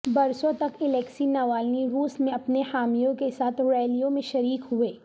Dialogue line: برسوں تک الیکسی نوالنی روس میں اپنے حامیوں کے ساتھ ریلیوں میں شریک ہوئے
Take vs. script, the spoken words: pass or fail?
pass